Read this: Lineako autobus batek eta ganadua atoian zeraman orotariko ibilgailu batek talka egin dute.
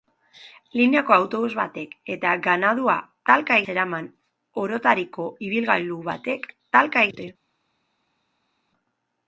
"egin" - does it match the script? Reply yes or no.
no